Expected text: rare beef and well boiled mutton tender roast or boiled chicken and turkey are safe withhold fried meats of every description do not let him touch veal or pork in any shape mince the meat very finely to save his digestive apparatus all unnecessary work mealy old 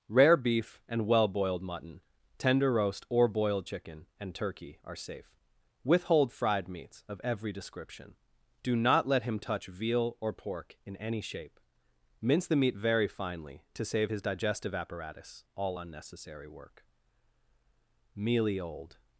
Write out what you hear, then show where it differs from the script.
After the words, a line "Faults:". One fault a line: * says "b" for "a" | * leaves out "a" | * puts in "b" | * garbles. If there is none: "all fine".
rare beef and well boiled mutton tender roast or boiled chicken and turkey are safe withhold fried meats of every description do not let him touch veal or pork in any shape mince the meat very finely to save his digestive apparatus all unnecessary work mealy old
Faults:
all fine